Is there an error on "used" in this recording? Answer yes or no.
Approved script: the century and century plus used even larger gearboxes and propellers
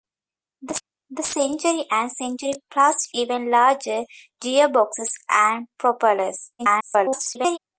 yes